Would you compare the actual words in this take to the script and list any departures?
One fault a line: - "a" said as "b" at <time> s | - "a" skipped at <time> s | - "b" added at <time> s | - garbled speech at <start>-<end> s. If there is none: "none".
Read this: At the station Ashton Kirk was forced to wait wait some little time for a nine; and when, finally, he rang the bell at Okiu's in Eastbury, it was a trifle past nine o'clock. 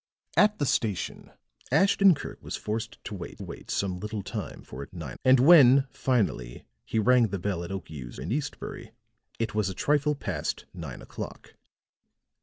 none